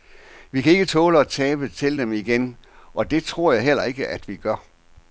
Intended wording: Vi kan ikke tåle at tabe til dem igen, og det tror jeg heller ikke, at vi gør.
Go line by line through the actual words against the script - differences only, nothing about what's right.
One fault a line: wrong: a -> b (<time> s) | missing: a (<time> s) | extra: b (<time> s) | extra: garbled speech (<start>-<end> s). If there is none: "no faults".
no faults